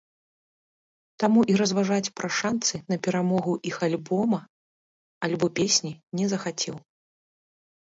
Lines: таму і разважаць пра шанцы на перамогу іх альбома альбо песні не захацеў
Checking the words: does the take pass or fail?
pass